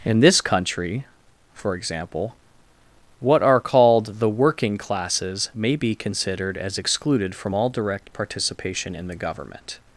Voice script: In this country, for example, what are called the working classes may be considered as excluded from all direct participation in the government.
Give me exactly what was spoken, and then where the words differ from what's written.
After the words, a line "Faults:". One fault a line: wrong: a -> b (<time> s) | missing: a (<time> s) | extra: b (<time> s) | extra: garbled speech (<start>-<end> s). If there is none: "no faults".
In this country, for example, what are called the working classes may be considered as excluded from all direct participation in the government.
Faults:
no faults